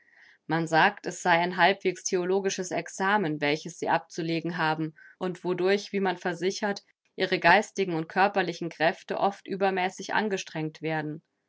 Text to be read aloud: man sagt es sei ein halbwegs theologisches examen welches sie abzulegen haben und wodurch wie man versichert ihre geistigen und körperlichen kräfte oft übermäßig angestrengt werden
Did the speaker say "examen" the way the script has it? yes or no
yes